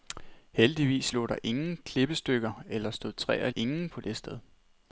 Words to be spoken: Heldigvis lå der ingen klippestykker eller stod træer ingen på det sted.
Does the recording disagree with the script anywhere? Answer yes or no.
no